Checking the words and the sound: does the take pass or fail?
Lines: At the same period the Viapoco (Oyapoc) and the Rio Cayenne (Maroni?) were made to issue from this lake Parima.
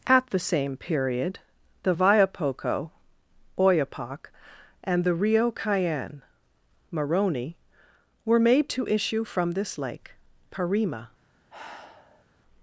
fail